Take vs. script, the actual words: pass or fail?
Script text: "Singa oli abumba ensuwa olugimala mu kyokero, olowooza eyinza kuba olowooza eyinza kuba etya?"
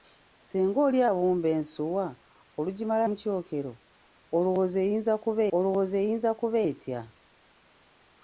pass